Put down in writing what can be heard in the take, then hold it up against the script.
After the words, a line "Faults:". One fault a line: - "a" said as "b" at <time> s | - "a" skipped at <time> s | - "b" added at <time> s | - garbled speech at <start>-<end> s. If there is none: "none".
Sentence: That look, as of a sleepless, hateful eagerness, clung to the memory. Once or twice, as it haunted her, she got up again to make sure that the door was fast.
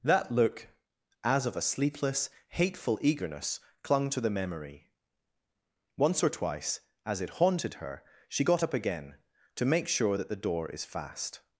That look, as of a sleepless, hateful eagerness, clung to the memory. Once or twice, as it haunted her, she got up again to make sure that the door is fast.
Faults:
- "was" said as "is" at 10.7 s